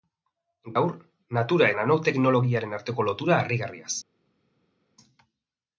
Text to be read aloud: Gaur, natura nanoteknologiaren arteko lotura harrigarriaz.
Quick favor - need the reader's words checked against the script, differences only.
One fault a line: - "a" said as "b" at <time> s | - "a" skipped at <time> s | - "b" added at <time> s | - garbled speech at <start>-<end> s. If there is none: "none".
none